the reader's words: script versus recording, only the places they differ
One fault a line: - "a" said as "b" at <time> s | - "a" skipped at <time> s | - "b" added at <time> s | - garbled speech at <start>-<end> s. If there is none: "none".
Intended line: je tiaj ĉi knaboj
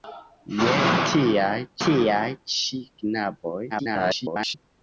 - "tiaj" added at 1.8 s
- garbled speech at 3.7-4.5 s